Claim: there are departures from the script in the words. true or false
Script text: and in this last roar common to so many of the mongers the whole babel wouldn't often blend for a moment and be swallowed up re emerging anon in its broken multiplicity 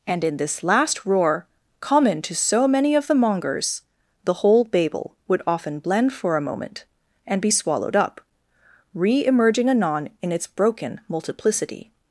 true